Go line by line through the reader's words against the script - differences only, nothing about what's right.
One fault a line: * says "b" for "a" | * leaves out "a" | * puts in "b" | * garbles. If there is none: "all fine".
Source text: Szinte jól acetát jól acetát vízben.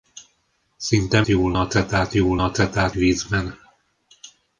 all fine